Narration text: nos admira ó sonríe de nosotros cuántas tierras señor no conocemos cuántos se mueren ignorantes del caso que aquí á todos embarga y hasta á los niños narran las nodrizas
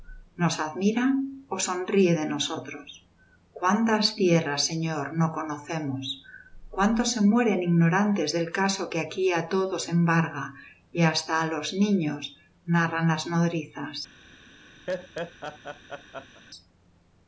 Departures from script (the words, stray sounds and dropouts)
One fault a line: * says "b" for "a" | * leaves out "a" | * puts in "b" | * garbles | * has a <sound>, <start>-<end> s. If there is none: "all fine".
* has a laugh, 14.9-16.4 s